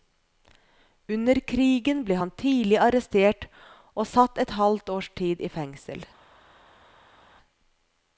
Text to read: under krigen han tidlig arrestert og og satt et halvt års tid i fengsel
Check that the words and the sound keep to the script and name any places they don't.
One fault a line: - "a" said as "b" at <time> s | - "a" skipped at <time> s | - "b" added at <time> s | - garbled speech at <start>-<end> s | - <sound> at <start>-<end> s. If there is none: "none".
- "ble" added at 2.1 s
- "og" skipped at 4.1 s